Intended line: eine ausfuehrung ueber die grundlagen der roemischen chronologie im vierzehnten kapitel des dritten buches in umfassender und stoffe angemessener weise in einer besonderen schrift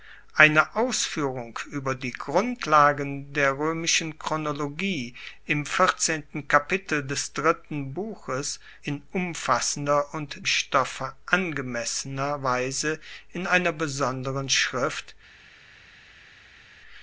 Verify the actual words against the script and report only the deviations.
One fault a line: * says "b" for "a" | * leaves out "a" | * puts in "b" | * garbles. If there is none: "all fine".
all fine